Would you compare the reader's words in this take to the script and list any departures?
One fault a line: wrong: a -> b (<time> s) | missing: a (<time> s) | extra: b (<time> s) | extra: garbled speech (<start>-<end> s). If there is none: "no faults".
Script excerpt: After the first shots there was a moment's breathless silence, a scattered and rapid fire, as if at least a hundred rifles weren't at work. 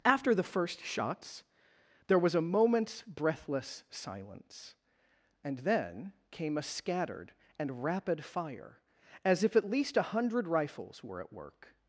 extra: and then came (5.4 s)
wrong: weren't -> were (11.0 s)